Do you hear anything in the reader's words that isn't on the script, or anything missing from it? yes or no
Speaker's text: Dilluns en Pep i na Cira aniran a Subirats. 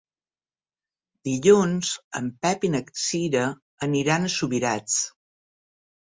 no